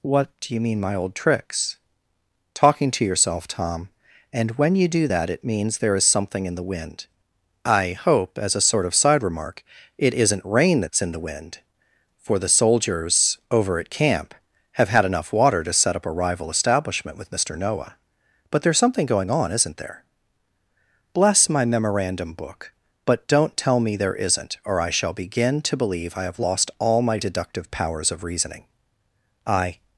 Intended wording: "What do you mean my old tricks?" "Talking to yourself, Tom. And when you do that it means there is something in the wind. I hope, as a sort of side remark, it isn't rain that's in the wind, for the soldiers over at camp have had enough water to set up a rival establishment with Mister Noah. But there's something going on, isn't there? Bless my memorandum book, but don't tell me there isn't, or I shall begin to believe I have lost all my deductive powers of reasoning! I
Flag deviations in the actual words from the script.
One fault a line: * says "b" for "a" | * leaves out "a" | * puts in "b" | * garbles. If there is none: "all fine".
all fine